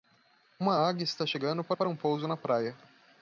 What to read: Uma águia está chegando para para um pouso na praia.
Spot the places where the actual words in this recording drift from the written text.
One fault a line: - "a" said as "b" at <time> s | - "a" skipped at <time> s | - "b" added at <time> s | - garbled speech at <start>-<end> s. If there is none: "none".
none